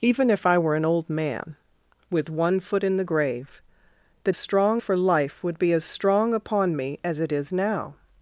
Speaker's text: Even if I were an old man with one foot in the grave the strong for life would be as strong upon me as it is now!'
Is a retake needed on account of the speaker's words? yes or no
no